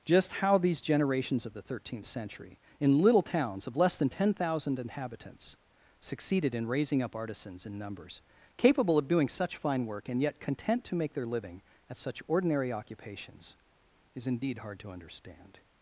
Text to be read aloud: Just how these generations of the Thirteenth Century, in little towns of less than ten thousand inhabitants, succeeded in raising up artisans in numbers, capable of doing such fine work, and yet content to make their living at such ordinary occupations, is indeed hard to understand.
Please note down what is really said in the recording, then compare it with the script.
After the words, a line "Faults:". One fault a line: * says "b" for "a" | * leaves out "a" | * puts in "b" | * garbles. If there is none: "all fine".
Just how these generations of the Thirteenth Century, in little towns of less than ten thousand inhabitants, succeeded in raising up artisans in numbers, capable of doing such fine work, and yet content to make their living at such ordinary occupations, is indeed hard to understand.
Faults:
all fine